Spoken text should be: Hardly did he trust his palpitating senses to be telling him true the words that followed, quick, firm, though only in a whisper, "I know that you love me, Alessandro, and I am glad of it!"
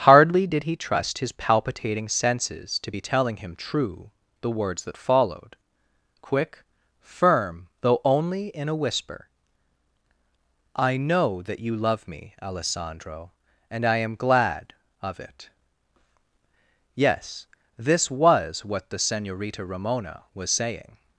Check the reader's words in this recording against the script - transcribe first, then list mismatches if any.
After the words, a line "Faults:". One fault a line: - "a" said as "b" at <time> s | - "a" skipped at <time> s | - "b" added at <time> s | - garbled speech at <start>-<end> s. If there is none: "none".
Hardly did he trust his palpitating senses to be telling him true the words that followed, quick, firm, though only in a whisper, "I know that you love me, Alessandro, and I am glad of it!" Yes, this was what the Senorita Ramona was saying
Faults:
- "Yes this was what the Senorita Ramona was saying" added at 16.9 s